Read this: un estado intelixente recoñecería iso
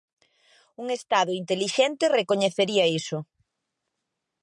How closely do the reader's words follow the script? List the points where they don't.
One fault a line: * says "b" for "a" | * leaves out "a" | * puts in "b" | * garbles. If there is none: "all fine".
all fine